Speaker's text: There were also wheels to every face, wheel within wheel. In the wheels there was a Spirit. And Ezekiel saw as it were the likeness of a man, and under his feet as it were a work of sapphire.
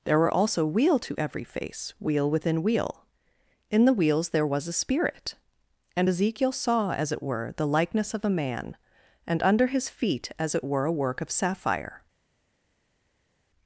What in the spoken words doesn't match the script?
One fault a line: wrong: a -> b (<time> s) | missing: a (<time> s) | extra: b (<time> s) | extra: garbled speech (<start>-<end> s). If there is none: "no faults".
wrong: wheels -> wheel (0.7 s)